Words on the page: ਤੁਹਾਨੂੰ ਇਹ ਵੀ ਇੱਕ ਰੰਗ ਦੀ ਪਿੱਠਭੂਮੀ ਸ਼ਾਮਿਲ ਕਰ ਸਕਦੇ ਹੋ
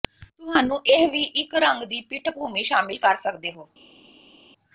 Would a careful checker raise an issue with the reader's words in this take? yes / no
no